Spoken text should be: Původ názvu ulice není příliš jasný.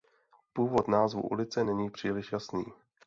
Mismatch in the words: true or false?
false